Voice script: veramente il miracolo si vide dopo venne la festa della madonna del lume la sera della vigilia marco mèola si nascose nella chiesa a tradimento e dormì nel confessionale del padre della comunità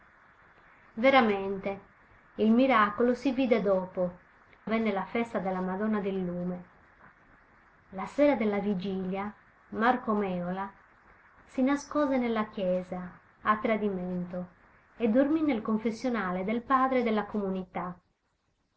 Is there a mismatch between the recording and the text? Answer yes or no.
no